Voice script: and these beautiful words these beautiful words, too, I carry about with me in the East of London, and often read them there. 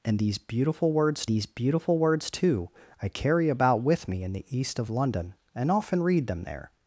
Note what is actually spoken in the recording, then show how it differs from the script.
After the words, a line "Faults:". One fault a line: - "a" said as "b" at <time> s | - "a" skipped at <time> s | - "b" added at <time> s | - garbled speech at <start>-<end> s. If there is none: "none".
and these beautiful words these beautiful words, too, I carry about with me in the East of London, and often read them there.
Faults:
none